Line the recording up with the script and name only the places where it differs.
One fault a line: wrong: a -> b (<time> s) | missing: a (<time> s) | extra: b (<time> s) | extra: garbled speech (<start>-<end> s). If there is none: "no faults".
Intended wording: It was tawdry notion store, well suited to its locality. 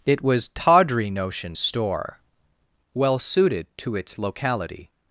no faults